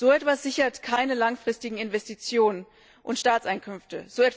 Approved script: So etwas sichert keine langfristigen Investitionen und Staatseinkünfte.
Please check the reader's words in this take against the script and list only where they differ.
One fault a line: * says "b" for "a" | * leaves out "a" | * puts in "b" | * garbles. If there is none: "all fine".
all fine